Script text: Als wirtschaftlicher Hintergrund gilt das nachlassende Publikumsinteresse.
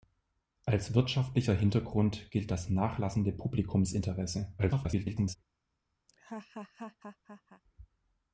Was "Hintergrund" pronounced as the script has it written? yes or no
yes